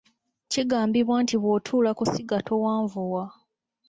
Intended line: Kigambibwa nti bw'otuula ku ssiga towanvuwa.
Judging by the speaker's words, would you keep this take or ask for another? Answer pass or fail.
pass